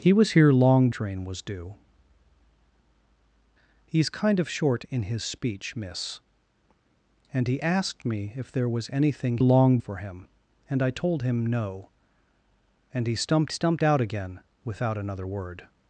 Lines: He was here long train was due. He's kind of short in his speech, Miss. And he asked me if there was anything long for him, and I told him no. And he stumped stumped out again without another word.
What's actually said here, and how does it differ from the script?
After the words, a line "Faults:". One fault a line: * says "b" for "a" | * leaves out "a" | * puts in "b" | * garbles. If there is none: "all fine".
He was here long train was due. He's kind of short in his speech, Miss. And he asked me if there was anything long for him, and I told him no. And he stumped stumped out again without another word.
Faults:
all fine